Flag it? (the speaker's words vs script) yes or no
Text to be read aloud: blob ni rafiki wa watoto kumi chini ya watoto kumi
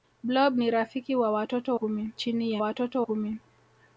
no